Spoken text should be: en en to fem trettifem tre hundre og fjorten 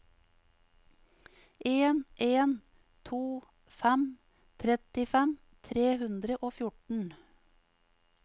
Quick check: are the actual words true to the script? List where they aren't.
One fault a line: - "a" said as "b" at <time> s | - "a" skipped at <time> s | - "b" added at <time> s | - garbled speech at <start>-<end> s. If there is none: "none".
none